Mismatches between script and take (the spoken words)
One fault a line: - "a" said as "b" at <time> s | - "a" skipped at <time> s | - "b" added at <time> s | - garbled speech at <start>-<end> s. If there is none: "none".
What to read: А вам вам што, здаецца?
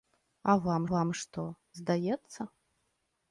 none